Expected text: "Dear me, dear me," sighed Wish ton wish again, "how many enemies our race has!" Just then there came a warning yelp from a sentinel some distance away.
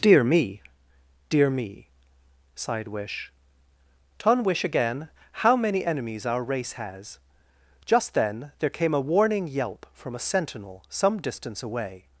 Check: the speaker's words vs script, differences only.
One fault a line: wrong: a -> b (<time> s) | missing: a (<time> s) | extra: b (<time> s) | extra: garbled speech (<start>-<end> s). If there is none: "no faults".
no faults